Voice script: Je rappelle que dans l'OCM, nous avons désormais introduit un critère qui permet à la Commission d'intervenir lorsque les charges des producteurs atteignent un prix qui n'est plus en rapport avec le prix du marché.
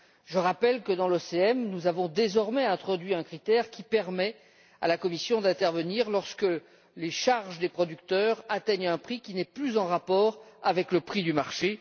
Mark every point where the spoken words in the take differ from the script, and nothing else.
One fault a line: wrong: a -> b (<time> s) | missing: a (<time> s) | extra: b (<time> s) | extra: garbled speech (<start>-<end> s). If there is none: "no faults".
no faults